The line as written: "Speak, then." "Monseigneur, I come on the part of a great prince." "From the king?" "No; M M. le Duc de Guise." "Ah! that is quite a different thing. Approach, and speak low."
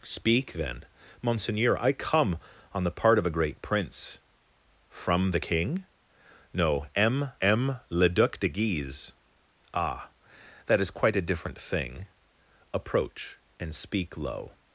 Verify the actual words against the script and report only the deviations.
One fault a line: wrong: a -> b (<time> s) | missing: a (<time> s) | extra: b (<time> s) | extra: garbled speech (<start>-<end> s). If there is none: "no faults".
no faults